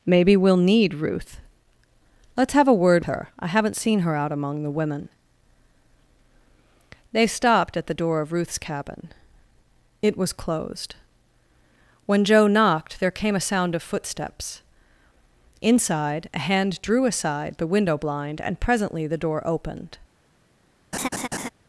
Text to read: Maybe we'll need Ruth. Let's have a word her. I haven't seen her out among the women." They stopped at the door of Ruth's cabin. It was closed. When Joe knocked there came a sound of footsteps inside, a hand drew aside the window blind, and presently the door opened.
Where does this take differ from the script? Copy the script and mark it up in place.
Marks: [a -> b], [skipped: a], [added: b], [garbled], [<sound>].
Maybe we'll need Ruth. Let's have a word her. I haven't seen her out among the women." They stopped at the door of Ruth's cabin. It was closed. When Joe knocked there came a sound of footsteps inside, a hand drew aside the window blind, and presently the door opened. [laugh]